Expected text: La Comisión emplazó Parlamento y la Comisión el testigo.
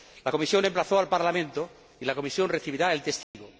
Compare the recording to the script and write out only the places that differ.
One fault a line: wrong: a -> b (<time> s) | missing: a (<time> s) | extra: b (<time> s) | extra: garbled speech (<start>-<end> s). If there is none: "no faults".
extra: al (1.0 s)
extra: recibirá (2.5 s)